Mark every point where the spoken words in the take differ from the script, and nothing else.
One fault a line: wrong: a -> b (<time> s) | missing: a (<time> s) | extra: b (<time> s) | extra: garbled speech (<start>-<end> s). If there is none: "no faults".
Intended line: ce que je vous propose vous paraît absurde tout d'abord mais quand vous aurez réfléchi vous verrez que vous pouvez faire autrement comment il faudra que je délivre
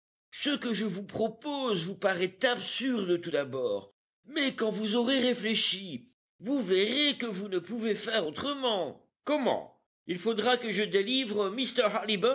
extra: ne (7.5 s)